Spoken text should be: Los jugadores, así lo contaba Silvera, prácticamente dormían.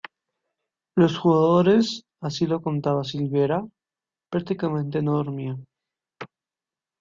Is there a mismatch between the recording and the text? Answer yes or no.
yes